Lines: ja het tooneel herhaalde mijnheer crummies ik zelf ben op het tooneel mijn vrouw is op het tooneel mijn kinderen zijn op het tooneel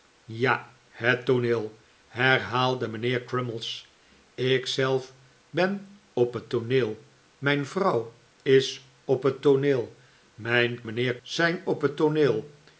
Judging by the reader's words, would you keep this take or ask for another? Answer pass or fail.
fail